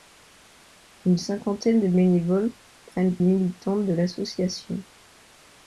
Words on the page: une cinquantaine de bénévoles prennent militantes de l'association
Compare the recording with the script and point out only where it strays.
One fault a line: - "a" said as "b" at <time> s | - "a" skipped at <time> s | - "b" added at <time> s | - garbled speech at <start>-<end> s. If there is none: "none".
none